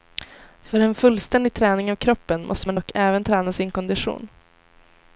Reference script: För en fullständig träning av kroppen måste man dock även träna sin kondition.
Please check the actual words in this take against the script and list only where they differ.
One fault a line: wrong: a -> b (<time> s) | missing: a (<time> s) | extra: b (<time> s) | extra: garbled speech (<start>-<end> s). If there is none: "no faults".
no faults